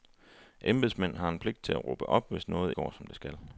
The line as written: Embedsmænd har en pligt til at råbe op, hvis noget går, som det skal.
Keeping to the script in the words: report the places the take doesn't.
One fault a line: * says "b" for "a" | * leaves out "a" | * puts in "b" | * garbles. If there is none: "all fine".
all fine